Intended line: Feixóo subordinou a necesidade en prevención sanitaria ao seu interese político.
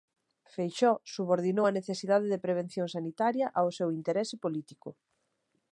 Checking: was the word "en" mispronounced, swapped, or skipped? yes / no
yes